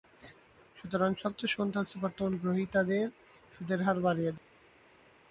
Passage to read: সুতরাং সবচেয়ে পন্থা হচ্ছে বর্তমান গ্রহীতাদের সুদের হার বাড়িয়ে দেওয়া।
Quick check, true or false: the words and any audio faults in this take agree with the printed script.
true